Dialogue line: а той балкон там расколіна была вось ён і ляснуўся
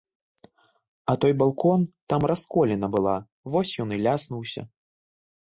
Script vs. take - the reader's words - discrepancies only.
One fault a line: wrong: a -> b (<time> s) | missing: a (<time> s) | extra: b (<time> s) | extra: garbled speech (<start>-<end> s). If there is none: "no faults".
no faults